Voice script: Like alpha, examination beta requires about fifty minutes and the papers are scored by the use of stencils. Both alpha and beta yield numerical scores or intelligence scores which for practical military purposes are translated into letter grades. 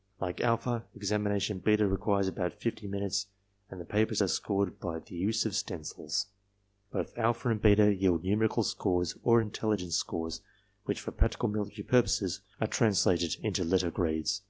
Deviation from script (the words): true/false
false